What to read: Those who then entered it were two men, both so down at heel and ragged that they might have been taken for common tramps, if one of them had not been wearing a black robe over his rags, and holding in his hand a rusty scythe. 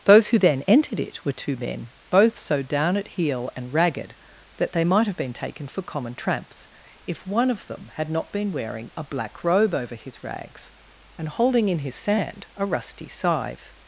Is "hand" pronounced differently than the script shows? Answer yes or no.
yes